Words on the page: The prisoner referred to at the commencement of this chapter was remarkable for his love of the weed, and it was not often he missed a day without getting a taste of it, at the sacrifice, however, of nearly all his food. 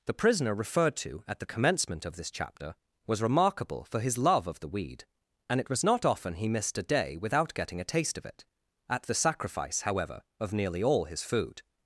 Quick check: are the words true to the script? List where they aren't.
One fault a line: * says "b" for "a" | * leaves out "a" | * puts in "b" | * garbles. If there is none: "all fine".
all fine